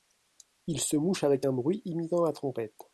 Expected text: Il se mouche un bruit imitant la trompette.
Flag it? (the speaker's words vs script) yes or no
yes